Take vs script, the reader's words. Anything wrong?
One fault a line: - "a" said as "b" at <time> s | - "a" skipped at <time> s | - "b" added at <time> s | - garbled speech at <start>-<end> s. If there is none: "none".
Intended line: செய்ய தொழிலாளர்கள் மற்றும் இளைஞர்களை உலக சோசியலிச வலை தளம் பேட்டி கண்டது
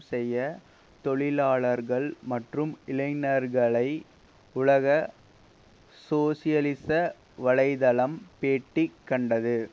none